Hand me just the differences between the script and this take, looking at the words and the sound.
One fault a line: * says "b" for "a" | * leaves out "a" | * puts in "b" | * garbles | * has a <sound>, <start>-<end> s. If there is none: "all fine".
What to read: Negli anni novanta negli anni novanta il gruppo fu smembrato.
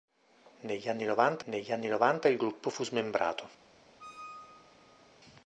* has a squeak, 4.0-5.1 s